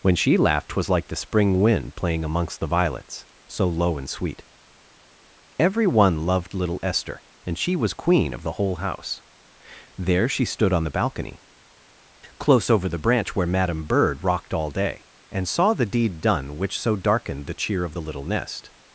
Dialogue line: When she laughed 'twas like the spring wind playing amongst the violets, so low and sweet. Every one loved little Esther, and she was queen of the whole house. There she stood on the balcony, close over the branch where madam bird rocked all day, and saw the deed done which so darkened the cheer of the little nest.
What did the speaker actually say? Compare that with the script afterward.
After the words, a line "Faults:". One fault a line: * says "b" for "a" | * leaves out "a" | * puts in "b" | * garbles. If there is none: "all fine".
When she laughed 'twas like the spring wind playing amongst the violets, so low and sweet. Every one loved little Esther, and she was queen of the whole house. There she stood on the balcony, close over the branch where madam bird rocked all day, and saw the deed done which so darkened the cheer of the little nest.
Faults:
all fine